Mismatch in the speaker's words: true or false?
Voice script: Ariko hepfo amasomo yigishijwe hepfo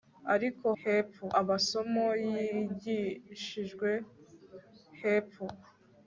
false